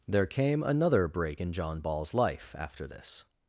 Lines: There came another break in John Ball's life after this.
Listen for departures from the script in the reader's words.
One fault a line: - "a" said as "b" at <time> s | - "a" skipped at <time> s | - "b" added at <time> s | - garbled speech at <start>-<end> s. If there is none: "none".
none